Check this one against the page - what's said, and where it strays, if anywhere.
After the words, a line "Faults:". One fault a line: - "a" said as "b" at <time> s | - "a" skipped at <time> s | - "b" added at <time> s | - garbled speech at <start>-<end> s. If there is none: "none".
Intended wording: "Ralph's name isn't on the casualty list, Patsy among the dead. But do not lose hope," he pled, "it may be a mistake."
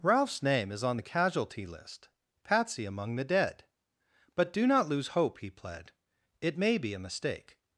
"Ralph's name is on the casualty list, Patsy among the dead. But do not lose hope," he pled, "it may be a mistake."
Faults:
- "isn't" said as "is" at 0.7 s